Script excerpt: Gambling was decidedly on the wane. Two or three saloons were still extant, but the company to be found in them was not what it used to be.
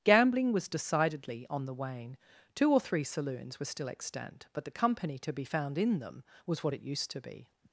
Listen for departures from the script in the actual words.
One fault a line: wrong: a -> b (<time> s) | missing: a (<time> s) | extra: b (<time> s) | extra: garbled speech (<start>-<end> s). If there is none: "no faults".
missing: not (6.6 s)